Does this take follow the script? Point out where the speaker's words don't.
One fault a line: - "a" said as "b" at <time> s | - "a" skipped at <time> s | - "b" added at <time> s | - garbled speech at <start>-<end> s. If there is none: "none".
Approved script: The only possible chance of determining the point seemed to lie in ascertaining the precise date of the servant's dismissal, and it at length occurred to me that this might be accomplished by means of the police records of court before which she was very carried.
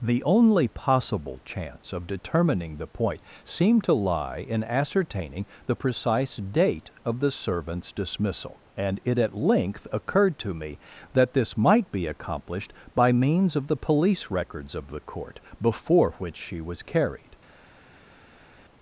- "the" added at 14.9 s
- "very" skipped at 16.8 s